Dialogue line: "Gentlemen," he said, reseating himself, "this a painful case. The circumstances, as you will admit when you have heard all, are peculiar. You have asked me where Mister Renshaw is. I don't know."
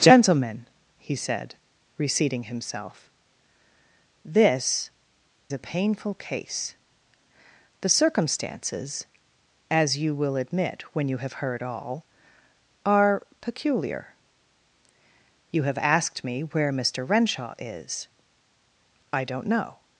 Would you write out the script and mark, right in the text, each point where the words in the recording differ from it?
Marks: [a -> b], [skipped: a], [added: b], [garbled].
"Gentlemen," he said, reseating himself, "this a painful case. The circumstances, as you will admit when you have heard all, are peculiar. You have asked me where Mister Renshaw is. I don't know."